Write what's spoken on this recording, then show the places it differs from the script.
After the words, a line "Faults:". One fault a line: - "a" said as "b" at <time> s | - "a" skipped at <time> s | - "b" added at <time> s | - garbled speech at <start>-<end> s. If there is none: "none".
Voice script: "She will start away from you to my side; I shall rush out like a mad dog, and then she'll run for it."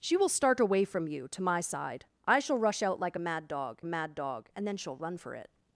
"She will start away from you to my side; I shall rush out like a mad dog mad dog, and then she'll run for it."
Faults:
- "mad dog" added at 3.8 s